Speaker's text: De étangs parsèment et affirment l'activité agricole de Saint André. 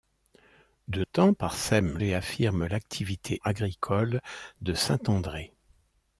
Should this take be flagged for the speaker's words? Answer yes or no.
no